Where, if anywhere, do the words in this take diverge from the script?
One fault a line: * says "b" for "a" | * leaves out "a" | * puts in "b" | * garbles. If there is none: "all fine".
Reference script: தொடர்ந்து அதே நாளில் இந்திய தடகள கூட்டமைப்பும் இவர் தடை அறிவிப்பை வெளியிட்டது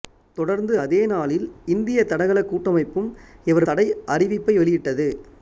all fine